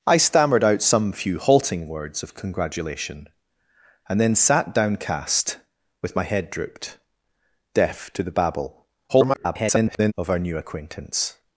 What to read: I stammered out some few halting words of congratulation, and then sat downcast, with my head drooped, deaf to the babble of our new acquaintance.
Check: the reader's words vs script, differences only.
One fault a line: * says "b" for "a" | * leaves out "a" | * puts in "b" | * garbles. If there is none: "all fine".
* garbles